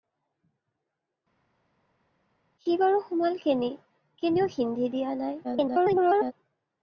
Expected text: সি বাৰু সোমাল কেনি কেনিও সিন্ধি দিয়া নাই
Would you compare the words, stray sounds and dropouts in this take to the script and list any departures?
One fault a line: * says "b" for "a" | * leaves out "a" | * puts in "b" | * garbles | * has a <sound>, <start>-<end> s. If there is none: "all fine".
* garbles